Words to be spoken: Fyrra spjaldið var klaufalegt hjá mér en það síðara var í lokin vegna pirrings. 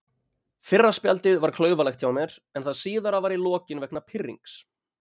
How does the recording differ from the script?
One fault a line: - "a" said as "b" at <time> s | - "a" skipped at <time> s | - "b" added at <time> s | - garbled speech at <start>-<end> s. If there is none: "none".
none